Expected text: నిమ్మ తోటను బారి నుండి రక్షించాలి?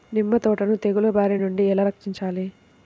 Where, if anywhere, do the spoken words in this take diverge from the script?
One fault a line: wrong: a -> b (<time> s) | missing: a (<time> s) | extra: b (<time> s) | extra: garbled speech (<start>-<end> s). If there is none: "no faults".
extra: తెగులు (0.8 s)
extra: ఎలా (1.7 s)